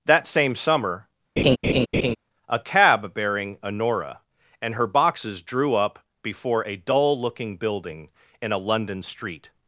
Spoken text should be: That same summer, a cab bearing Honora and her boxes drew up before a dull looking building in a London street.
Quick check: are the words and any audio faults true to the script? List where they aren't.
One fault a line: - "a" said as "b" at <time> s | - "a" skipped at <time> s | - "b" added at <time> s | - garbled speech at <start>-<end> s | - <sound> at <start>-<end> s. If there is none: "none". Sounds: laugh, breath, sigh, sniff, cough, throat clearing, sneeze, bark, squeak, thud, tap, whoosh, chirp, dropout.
- laugh at 1.4-2.2 s